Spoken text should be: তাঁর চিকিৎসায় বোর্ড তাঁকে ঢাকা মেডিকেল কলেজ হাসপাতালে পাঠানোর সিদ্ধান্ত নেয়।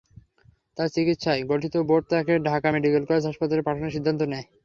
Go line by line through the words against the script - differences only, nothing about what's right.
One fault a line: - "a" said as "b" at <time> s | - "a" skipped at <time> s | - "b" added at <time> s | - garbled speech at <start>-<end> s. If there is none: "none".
- "গঠিত" added at 1.5 s